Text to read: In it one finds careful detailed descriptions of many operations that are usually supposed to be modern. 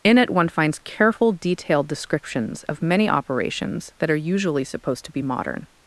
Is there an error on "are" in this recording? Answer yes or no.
no